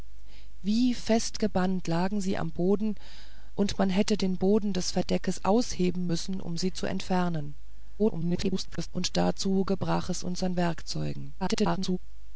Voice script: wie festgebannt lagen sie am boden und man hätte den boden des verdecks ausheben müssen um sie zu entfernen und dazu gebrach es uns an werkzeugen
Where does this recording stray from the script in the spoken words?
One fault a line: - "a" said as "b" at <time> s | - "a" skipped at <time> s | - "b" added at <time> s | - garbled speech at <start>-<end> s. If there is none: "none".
- garbled speech at 8.0-8.9 s
- garbled speech at 11.4-12.0 s